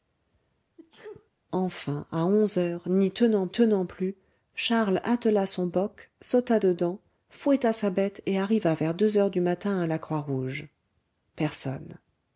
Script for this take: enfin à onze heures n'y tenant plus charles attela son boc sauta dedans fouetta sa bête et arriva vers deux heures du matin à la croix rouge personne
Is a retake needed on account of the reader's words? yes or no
yes